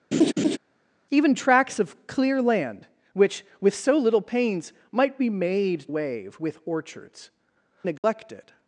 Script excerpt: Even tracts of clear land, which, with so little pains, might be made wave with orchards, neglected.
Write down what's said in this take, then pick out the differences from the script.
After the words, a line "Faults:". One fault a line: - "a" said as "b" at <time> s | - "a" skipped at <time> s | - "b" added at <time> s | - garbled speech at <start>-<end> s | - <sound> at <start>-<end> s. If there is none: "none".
Even tracts of clear land, which, with so little pains, might be made wave with orchards, neglected.
Faults:
- laugh at 0.1-0.6 s
- dropout at 8.0-8.0 s